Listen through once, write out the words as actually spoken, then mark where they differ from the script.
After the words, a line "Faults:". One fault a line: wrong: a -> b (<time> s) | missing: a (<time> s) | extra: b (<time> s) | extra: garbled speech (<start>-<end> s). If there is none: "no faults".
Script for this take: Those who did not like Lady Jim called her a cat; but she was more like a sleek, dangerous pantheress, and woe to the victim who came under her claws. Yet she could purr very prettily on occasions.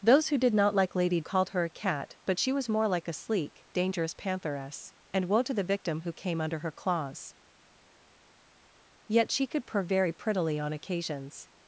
Those who did not like Lady Called her a cat; but she was more like a sleek, dangerous pantheress, and woe to the victim who came under her claws. Yet she could purr very prettily on occasions.
Faults:
missing: Jim (1.2 s)